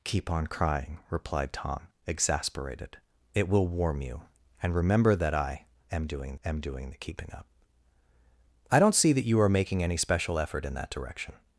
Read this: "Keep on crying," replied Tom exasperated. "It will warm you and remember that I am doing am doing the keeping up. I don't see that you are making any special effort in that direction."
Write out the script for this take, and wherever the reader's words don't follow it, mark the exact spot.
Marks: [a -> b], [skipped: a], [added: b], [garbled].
"Keep on crying," replied Tom exasperated. "It will warm you and remember that I am doing am doing the keeping up. I don't see that you are making any special effort in that direction."